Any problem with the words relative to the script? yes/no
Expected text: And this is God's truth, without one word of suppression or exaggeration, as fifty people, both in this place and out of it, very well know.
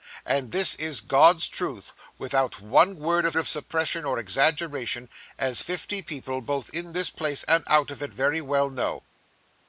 yes